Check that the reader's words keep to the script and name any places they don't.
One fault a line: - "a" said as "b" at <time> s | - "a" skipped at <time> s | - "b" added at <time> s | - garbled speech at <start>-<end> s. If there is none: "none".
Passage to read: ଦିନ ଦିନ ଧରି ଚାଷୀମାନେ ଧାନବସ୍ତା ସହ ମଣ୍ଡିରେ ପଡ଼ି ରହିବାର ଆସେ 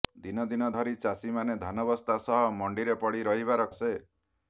none